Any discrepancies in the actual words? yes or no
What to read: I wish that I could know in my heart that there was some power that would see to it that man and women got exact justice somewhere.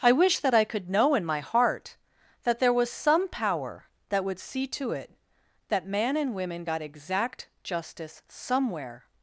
no